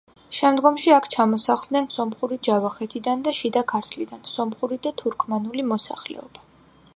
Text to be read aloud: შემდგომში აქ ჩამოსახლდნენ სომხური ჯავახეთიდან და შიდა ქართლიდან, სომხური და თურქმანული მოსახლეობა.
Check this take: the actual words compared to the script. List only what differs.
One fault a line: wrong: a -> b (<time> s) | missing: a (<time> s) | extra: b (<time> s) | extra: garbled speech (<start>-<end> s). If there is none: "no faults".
no faults